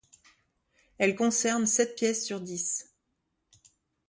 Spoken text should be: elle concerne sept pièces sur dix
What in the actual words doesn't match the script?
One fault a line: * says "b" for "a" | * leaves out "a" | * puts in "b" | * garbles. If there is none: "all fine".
all fine